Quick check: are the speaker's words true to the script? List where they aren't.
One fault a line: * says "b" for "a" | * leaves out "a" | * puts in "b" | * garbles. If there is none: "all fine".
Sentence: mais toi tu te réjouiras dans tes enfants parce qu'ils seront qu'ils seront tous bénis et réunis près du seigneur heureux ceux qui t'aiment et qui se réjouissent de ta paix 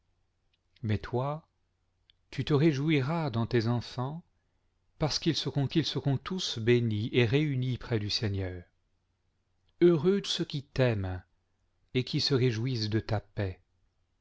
all fine